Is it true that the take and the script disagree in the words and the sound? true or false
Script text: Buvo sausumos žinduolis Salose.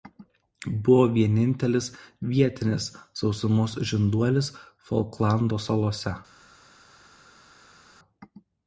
true